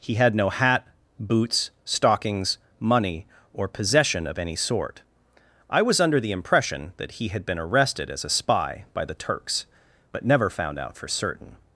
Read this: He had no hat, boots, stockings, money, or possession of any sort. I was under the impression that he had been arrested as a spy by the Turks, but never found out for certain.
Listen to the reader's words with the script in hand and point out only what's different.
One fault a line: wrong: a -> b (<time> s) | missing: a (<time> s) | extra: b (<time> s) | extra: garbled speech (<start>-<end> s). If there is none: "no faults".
no faults